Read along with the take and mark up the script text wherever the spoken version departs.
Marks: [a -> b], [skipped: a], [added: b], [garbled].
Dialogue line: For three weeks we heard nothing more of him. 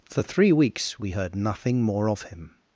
For three weeks we heard nothing more of him.